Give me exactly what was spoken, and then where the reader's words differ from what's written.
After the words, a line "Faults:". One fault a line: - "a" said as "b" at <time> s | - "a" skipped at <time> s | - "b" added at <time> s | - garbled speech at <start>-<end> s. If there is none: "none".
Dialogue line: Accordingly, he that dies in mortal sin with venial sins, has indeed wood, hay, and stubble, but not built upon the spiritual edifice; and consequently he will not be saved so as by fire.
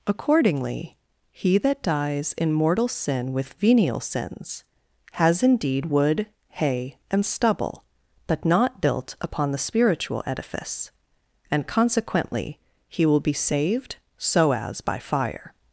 Accordingly, he that dies in mortal sin with venial sins, has indeed wood, hay, and stubble, but not built upon the spiritual edifice; and consequently he will be saved so as by fire.
Faults:
- "not" skipped at 13.2 s